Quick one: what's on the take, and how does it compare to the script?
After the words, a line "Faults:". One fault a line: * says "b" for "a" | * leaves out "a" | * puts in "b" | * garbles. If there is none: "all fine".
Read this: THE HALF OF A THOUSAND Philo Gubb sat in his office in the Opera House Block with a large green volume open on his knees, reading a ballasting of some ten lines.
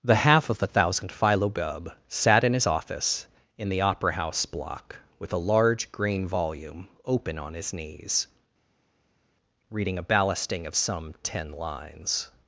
THE HALF OF A THOUSAND Philo Gubb sat in his office in the Opera House Block with a large green volume open on his knees, reading a ballasting of some ten lines.
Faults:
all fine